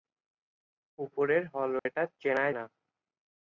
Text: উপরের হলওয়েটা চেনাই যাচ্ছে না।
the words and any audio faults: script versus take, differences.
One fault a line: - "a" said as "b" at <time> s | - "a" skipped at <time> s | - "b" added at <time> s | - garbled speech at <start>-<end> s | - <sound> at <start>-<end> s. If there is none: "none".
- dropout at 1.8-1.9 s
- "যাচ্ছে" skipped at 2.5 s